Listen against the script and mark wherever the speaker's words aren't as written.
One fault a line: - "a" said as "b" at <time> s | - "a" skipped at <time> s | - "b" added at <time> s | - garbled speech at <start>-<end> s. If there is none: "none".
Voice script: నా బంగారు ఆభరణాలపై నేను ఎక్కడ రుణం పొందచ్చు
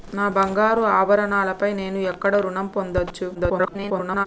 - garbled speech at 3.3-4.3 s